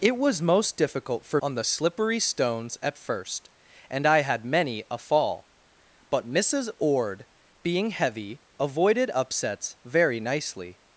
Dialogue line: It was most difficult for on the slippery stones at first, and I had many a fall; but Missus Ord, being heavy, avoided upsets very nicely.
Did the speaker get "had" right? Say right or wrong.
right